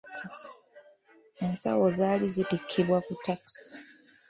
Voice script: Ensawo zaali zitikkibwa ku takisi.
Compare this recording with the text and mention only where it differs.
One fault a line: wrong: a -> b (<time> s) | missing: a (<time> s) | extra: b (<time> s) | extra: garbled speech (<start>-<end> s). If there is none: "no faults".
no faults